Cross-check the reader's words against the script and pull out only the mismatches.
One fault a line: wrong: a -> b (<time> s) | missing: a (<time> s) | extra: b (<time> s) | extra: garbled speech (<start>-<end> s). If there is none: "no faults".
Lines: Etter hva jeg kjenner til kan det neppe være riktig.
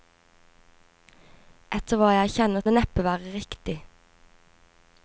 missing: til kan (2.6 s)